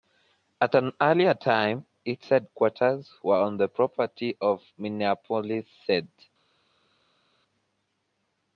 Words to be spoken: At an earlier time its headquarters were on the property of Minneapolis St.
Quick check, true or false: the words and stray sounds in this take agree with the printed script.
true